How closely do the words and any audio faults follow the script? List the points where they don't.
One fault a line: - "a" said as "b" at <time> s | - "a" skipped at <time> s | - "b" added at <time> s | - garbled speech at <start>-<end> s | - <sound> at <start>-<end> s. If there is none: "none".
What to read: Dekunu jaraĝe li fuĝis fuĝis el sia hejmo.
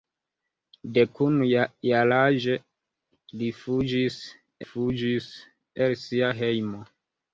none